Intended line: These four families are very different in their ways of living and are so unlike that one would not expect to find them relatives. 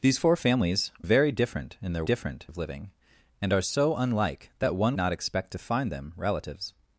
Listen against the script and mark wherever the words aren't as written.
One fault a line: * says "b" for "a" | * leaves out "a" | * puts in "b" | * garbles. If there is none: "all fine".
* leaves out "are"
* says "different" for "ways"
* leaves out "would"